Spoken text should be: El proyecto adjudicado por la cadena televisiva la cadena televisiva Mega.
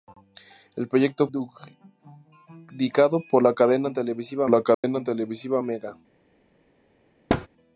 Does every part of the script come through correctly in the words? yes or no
yes